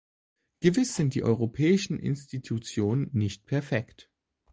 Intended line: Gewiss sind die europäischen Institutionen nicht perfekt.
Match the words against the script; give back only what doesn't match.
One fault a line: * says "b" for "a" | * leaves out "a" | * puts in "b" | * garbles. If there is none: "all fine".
all fine